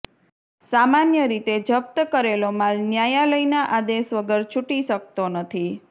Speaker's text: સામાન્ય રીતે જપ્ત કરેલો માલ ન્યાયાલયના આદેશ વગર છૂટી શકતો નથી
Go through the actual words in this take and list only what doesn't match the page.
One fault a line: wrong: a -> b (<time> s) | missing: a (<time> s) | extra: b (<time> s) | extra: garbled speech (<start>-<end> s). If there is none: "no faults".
no faults